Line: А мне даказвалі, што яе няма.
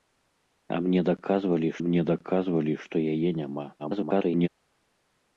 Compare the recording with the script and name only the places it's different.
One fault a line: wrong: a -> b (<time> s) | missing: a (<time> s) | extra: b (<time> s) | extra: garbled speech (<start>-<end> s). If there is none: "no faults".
extra: мне даказвалі (1.8 s)
extra: garbled speech (3.8-4.5 s)